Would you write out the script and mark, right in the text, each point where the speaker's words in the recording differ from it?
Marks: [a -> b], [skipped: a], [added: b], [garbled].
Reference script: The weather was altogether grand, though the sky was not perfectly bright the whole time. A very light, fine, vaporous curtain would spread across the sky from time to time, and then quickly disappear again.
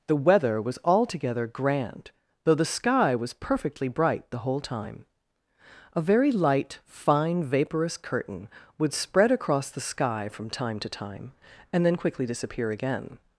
The weather was altogether grand, though the sky was [skipped: not] perfectly bright the whole time. A very light, fine, vaporous curtain would spread across the sky from time to time, and then quickly disappear again.